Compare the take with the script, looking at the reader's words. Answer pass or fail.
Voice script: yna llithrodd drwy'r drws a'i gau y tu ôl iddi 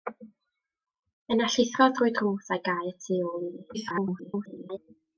fail